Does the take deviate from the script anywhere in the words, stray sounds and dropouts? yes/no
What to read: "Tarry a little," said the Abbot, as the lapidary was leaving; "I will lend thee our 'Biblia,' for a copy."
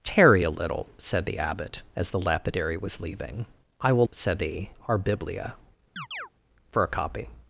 yes